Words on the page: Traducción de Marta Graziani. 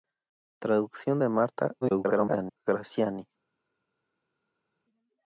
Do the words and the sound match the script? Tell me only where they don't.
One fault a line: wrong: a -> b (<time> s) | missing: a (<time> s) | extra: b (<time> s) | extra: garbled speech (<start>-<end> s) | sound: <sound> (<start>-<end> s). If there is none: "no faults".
extra: garbled speech (1.8-2.6 s)